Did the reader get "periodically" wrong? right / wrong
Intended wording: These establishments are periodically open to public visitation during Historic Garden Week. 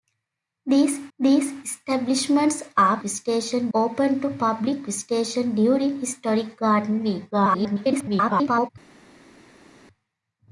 wrong